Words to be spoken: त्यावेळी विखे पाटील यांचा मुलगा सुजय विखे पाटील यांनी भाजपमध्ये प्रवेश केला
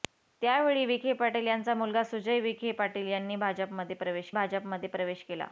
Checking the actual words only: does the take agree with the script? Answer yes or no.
no